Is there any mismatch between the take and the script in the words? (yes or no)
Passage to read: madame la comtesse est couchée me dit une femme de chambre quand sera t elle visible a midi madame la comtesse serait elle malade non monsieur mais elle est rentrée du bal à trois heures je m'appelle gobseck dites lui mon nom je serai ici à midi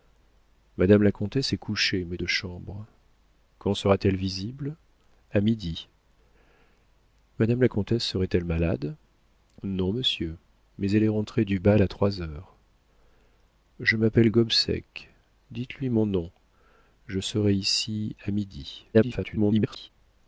yes